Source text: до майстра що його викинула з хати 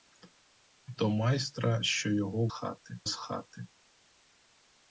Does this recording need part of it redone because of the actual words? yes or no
yes